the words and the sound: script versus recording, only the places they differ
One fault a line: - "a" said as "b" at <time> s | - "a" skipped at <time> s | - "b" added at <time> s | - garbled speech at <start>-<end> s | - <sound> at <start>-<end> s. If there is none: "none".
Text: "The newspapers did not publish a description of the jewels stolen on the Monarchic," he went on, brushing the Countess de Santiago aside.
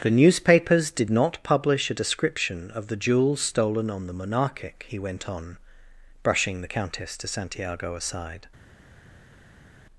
none